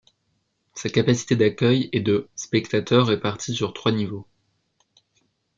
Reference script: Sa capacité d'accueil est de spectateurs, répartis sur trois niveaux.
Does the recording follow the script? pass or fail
pass